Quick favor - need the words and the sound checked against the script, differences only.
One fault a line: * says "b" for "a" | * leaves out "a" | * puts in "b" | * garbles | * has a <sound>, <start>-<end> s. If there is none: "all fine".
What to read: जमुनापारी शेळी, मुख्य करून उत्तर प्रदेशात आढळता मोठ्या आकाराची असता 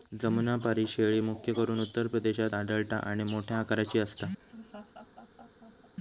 * puts in "आणि"
* has a laugh, 4.4-5.9 s